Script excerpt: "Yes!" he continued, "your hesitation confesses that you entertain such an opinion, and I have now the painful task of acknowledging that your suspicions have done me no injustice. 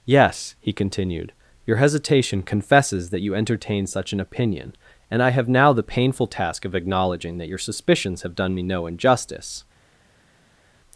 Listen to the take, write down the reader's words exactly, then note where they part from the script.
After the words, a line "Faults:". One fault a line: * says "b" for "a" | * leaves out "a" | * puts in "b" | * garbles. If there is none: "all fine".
"Yes!" he continued, "your hesitation confesses that you entertain such an opinion, and I have now the painful task of acknowledging that your suspicions have done me no injustice.
Faults:
all fine